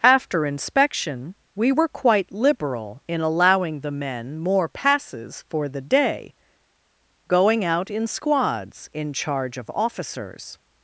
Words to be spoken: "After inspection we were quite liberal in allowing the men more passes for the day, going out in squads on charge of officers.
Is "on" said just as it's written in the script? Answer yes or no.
no